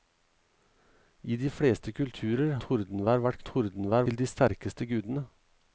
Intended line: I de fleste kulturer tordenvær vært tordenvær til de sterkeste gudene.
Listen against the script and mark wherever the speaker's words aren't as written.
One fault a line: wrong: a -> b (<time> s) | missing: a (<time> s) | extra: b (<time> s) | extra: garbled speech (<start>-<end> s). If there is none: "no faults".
no faults